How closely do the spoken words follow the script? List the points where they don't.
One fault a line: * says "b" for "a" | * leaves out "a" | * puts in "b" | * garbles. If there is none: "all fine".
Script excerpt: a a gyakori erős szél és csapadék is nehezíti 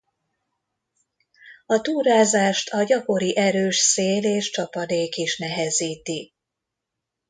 * puts in "túrázást"